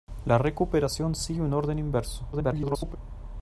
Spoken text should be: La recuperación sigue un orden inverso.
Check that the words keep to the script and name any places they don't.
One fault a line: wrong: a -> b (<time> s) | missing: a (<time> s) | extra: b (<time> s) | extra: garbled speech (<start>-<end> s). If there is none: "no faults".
extra: garbled speech (2.3-3.0 s)